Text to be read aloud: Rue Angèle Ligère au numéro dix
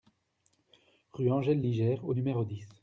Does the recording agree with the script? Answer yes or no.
yes